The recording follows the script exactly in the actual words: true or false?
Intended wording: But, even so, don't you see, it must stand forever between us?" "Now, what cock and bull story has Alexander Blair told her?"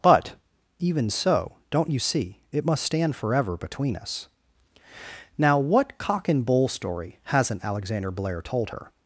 false